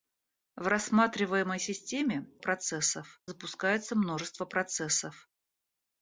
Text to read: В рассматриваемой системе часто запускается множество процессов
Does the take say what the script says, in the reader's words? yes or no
no